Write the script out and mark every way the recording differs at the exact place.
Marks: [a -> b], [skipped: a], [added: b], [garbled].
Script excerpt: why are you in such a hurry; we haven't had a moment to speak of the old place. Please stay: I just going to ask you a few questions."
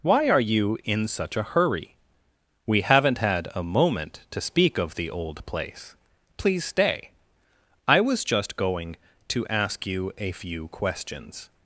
why are you in such a hurry; we haven't had a moment to speak of the old place. Please stay: I [added: was] just going to ask you a few questions."